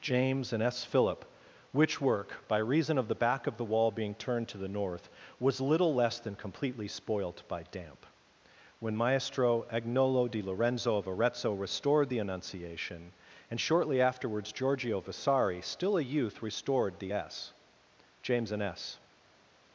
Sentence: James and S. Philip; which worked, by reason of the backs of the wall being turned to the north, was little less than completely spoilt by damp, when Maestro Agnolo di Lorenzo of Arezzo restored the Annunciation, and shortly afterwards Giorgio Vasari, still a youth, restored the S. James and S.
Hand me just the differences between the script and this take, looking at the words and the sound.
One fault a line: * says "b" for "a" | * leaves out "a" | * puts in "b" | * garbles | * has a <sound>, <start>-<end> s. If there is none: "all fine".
* says "work" for "worked"
* says "back" for "backs"